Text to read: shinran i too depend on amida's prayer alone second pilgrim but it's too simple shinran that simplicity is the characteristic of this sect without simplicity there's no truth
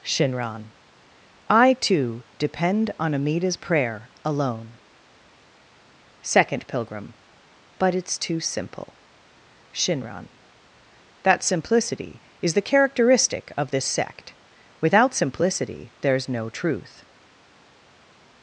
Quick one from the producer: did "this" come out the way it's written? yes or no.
yes